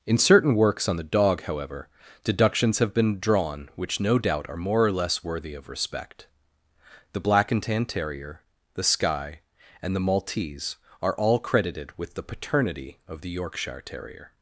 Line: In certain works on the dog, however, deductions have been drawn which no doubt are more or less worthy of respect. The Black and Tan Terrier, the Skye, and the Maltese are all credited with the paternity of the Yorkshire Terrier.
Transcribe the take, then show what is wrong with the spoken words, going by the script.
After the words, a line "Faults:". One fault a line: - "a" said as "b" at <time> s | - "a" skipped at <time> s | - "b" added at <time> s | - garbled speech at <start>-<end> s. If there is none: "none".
In certain works on the dog, however, deductions have been drawn which no doubt are more or less worthy of respect. The Black and Tan Terrier, the Skye, and the Maltese are all credited with the paternity of the Yorkshire Terrier.
Faults:
none